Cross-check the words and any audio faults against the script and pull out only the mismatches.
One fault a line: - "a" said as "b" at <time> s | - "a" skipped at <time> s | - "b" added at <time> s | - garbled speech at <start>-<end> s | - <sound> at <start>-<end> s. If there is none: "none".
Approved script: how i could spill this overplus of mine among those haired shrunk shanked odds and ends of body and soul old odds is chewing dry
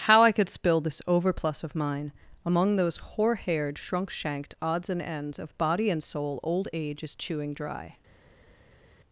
- "hoar" added at 3.0 s
- "odds" said as "age" at 6.7 s